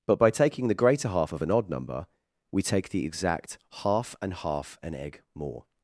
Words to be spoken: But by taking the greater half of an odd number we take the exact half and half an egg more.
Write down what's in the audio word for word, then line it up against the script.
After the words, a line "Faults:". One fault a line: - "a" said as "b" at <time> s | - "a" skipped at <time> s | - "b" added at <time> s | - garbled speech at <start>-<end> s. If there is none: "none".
But by taking the greater half of an odd number we take the exact half and half an egg more.
Faults:
none